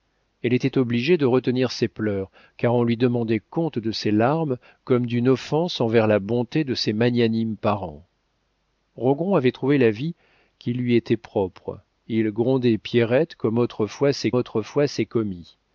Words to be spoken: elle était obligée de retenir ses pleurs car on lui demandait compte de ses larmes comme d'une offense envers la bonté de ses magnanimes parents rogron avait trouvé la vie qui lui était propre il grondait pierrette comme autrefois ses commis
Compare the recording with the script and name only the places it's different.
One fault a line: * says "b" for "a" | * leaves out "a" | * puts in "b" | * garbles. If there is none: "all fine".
* puts in "autrefois ses"